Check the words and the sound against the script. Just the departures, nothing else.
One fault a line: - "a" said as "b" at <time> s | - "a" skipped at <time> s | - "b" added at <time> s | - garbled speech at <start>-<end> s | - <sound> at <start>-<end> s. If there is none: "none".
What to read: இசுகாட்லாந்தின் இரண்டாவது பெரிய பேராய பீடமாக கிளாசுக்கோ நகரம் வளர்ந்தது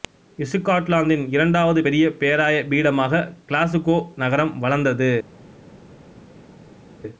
none